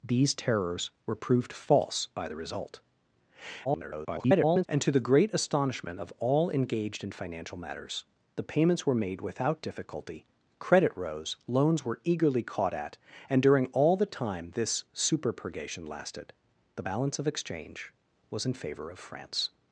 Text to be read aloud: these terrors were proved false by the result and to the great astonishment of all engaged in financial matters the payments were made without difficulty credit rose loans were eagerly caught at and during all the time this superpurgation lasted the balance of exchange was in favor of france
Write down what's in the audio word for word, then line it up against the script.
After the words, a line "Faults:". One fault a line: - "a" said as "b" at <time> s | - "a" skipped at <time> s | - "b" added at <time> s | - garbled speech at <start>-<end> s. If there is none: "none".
these terrors were proved false by the result [garbled] and to the great astonishment of all engaged in financial matters the payments were made without difficulty credit rose loans were eagerly caught at and during all the time this superpurgation lasted the balance of exchange was in favor of france
Faults:
- garbled speech at 3.6-4.7 s